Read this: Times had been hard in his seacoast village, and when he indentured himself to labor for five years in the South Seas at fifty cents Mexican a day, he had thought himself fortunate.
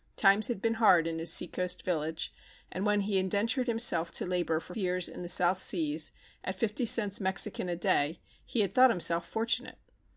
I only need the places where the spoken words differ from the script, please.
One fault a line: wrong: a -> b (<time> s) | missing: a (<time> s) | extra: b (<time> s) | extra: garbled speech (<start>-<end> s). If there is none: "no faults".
missing: five (4.7 s)